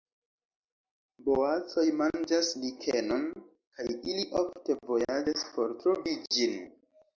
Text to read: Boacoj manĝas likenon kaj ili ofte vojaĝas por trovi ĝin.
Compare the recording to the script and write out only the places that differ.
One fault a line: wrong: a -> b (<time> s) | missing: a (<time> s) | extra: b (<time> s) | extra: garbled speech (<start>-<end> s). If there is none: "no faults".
no faults